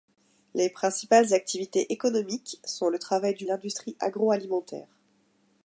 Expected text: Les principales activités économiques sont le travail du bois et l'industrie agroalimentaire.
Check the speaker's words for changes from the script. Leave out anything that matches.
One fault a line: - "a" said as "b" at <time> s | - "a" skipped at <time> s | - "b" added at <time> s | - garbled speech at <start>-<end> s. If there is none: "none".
- "bois et" skipped at 3.5 s